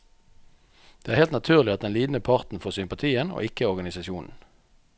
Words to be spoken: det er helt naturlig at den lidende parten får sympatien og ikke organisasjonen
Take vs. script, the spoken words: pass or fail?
pass